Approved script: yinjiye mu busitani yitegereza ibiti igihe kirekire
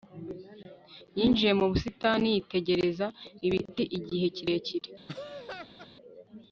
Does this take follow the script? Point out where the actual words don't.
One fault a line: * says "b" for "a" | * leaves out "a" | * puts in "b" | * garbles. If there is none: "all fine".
all fine